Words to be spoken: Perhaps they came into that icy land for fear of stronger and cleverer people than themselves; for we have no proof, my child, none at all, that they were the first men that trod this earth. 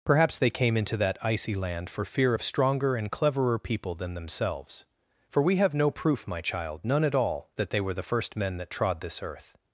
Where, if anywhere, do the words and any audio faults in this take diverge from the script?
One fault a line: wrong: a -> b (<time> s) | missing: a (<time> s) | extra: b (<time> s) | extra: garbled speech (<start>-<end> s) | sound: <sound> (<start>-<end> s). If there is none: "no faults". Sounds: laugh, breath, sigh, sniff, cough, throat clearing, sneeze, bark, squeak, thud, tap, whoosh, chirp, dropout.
no faults